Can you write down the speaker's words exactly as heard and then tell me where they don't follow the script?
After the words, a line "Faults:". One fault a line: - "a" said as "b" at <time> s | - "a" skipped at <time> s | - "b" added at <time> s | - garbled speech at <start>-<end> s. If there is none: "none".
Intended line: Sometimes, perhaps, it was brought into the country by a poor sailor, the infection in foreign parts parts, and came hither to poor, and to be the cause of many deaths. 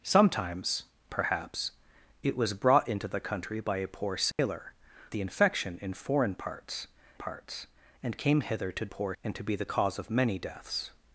Sometimes, perhaps, it was brought into the country by a poor sailor, the infection in foreign parts parts, and came hither to poor, and to be the cause of many deaths.
Faults:
none